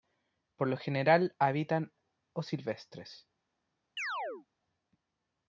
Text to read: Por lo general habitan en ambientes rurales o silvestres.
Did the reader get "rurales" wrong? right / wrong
wrong